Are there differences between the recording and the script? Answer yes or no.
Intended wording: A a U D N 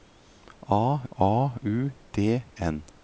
no